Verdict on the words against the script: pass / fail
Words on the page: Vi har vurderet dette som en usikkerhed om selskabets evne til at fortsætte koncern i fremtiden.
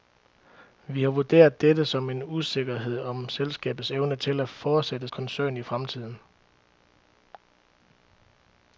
pass